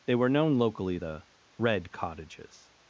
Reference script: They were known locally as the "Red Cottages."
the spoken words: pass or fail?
fail